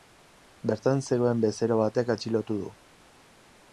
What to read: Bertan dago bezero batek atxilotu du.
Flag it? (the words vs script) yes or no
yes